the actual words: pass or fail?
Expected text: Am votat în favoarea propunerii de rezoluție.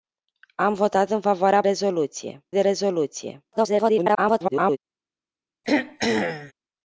fail